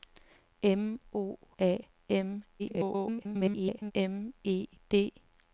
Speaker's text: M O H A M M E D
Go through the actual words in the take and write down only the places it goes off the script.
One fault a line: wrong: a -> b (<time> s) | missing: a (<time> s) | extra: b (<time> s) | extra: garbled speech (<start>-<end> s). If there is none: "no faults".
missing: H (1.4 s)
extra: garbled speech (2.6-3.9 s)